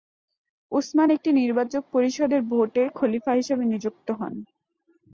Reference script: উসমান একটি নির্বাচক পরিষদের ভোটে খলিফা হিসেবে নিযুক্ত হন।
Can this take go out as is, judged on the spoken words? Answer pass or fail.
pass